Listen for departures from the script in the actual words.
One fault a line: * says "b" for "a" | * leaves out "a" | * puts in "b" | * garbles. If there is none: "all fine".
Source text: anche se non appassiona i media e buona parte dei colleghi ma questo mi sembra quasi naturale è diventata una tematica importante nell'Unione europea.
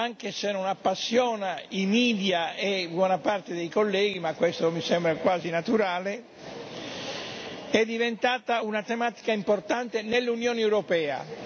all fine